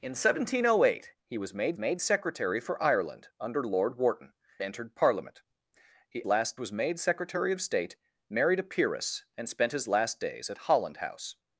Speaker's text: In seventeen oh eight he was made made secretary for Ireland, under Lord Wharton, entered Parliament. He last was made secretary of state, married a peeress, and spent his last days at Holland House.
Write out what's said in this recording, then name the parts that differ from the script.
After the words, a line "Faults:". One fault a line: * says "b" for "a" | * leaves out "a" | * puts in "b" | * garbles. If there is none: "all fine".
In seventeen oh eight he was made made secretary for Ireland, under Lord Wharton, entered Parliament. He last was made secretary of state, married a peeress, and spent his last days at Holland House.
Faults:
all fine